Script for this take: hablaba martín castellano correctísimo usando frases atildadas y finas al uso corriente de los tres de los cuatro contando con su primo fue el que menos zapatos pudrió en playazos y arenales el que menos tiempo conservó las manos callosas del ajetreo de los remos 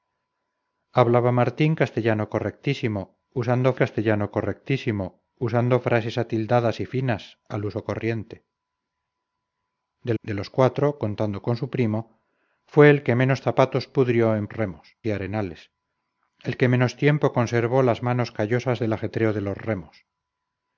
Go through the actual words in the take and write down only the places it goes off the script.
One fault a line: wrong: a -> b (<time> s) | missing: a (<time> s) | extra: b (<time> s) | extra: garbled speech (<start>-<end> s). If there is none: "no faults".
extra: castellano correctísimo usando (3.8 s)
missing: los tres (10.1 s)
wrong: playazos -> remos (14.5 s)